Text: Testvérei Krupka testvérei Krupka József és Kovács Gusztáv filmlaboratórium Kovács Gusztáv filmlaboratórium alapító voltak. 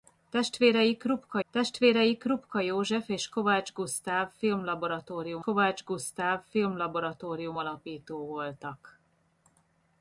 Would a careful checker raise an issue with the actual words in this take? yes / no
no